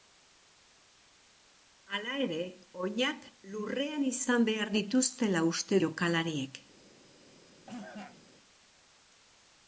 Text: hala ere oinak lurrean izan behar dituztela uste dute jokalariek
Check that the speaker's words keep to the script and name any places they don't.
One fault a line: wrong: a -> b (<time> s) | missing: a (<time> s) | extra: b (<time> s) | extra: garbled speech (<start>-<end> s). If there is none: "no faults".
missing: dute (5.8 s)